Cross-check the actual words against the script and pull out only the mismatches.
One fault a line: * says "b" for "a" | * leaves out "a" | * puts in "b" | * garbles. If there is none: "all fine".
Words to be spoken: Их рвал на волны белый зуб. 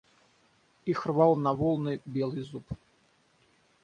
all fine